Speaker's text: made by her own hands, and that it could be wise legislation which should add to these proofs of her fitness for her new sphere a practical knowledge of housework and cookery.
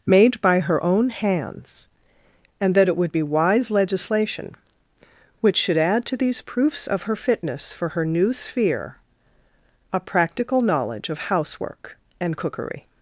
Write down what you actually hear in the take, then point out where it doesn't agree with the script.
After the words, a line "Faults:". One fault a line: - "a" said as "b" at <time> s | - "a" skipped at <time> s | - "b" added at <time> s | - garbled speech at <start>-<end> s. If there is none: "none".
made by her own hands, and that it would be wise legislation which should add to these proofs of her fitness for her new sphere a practical knowledge of housework and cookery.
Faults:
- "could" said as "would" at 3.0 s